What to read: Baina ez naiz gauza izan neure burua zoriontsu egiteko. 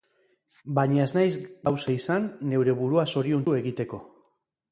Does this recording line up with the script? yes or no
yes